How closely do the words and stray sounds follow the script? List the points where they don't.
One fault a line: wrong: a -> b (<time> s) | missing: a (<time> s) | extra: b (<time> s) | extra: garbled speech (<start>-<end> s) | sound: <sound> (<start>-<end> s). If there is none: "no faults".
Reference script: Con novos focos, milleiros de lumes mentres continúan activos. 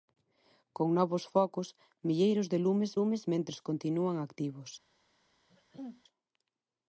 extra: lumes (3.0 s)
sound: throat clearing (5.5-6.0 s)